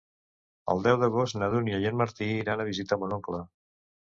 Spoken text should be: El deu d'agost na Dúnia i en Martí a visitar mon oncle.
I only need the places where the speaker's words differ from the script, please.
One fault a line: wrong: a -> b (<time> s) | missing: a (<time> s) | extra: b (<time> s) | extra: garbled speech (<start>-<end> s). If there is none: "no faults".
extra: iran (2.4 s)